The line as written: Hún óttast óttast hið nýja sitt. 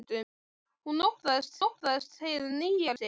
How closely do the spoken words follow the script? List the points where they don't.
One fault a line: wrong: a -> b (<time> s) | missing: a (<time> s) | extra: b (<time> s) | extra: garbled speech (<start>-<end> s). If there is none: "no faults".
no faults